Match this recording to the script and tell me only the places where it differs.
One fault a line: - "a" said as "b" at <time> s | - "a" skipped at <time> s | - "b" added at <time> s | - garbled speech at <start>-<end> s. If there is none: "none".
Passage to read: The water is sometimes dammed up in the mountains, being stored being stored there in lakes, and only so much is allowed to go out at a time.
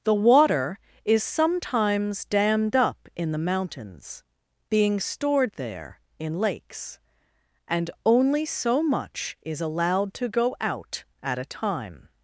- "being stored" skipped at 5.5 s